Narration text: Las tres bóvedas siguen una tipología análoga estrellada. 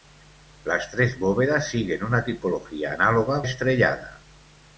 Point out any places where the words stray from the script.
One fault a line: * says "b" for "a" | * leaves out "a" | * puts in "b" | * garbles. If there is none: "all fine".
all fine